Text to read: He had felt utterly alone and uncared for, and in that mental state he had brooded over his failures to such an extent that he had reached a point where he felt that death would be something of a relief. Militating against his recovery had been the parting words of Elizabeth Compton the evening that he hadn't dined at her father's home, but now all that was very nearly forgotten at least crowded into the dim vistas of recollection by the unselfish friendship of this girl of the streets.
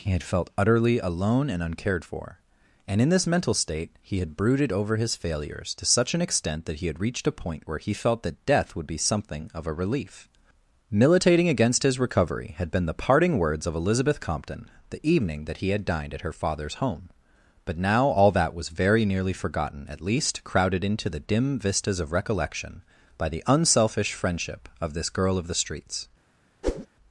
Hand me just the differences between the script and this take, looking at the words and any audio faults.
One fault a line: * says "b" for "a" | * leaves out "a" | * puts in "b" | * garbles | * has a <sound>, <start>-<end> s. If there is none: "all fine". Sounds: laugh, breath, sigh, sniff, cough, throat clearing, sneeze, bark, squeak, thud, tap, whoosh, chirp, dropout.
* says "this" for "that"
* says "had" for "hadn't"
* has a whoosh, 26.6-26.9 s